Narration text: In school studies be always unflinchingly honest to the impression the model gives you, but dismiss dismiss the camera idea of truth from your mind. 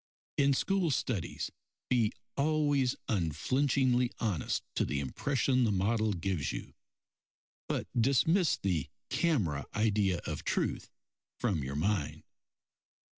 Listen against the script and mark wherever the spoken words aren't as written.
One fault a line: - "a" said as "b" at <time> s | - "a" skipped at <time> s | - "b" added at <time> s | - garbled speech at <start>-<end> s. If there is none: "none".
- "dismiss" skipped at 8.6 s